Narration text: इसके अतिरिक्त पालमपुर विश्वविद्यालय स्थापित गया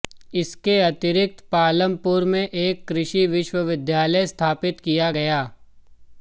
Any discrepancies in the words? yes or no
yes